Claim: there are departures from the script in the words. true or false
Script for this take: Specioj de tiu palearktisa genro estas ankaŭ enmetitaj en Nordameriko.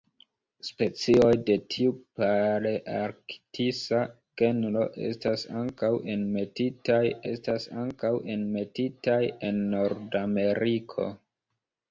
true